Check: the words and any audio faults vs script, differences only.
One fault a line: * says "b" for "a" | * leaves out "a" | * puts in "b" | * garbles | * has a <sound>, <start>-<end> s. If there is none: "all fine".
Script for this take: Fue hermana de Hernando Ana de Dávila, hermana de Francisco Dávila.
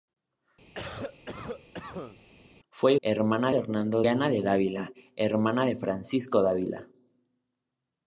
* has a cough, 0.7-2.2 s